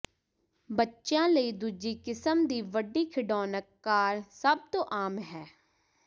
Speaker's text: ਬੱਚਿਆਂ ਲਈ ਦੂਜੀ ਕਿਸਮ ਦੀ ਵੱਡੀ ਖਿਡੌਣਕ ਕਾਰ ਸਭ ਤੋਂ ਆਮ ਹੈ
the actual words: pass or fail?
pass